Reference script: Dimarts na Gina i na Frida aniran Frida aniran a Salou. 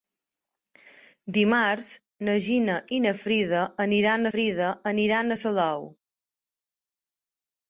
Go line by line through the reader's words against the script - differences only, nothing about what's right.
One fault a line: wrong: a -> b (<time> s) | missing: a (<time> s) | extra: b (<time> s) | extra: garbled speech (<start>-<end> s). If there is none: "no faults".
no faults